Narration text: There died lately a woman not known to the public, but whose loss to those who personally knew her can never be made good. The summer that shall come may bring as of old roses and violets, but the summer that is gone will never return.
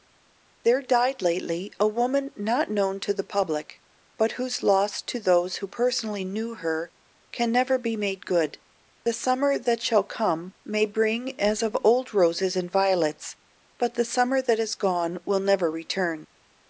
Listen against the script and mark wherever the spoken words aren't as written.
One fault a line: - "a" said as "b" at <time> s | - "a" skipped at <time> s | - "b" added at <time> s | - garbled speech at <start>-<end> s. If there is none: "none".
none